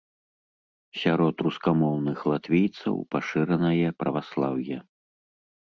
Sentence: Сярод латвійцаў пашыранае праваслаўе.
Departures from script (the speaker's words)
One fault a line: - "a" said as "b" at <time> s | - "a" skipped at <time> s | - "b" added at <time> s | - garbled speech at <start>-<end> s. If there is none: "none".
- "рускамоўных" added at 1.5 s